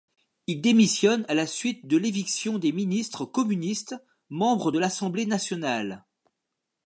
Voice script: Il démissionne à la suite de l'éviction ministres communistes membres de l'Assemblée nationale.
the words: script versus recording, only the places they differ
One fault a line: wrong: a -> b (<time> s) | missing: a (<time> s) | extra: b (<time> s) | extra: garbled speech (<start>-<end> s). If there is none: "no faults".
extra: des (2.6 s)